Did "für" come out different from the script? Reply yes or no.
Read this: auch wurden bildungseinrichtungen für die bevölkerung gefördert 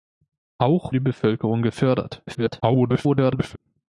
yes